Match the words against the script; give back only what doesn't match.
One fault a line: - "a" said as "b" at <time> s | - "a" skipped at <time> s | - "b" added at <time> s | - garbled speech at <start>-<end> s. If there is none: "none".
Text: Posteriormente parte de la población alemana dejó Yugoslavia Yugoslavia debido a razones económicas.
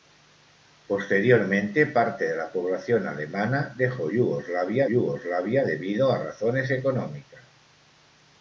none